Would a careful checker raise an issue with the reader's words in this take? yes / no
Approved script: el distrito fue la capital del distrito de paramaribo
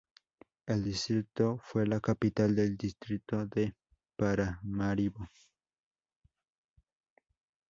no